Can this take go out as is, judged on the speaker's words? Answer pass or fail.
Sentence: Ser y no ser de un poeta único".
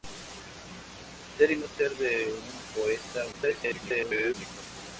fail